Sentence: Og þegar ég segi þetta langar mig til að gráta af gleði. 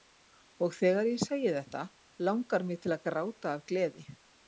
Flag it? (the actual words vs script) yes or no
no